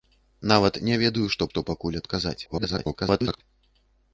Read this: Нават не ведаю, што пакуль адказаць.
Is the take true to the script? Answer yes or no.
no